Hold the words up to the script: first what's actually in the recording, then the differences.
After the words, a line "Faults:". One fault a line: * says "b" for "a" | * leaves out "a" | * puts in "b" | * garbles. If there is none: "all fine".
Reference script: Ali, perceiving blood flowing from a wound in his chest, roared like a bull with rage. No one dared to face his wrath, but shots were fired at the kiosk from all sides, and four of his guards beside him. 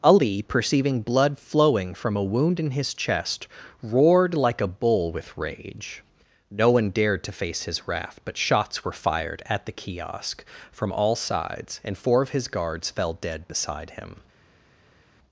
Ali, perceiving blood flowing from a wound in his chest, roared like a bull with rage. No one dared to face his wrath, but shots were fired at the kiosk from all sides, and four of his guards fell dead beside him.
Faults:
* puts in "fell dead"